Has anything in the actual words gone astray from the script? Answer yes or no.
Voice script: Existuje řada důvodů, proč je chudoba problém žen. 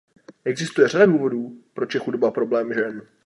no